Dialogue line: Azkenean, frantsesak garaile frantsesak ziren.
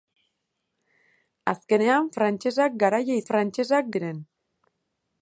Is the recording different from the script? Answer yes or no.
no